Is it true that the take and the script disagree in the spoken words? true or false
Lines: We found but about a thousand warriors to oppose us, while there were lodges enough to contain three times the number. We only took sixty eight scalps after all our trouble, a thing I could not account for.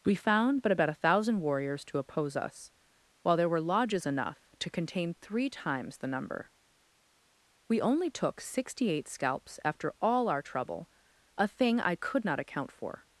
false